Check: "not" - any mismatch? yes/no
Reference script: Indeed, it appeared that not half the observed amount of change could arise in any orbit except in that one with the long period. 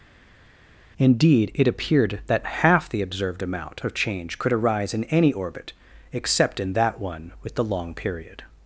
yes